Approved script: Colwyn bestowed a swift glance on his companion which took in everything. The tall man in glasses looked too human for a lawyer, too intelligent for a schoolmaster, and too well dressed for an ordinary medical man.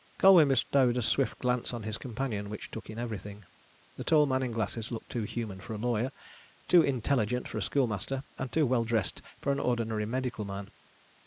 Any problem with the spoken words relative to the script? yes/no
no